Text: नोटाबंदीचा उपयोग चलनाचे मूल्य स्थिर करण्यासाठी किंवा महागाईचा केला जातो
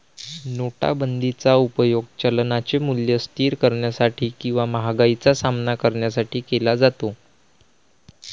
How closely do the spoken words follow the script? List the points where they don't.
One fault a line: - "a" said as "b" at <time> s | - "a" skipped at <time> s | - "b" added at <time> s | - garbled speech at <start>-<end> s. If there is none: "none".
- "सामना करण्यासाठी" added at 5.3 s